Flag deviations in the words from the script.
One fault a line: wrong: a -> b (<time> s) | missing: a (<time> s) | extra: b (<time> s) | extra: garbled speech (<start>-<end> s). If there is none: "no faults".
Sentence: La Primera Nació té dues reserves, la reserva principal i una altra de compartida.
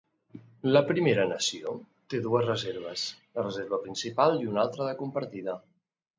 no faults